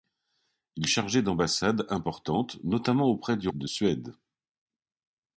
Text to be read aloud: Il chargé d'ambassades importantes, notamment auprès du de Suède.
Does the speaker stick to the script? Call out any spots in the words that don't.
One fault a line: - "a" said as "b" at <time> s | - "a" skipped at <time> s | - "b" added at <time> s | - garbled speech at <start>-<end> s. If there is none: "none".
none